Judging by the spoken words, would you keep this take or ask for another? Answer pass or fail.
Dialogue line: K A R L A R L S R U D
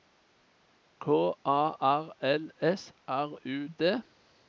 fail